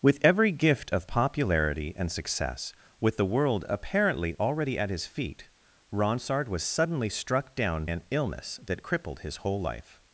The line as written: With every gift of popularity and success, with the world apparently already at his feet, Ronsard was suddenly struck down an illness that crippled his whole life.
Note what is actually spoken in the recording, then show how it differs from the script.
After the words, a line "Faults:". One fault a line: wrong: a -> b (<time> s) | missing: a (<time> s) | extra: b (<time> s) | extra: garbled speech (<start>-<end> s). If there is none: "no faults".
With every gift of popularity and success, with the world apparently already at his feet, Ronsard was suddenly struck down an illness that crippled his whole life.
Faults:
no faults